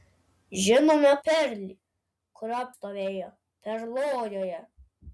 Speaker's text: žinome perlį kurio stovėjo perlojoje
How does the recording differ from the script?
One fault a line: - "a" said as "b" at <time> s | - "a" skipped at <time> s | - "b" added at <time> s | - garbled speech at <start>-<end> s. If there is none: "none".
none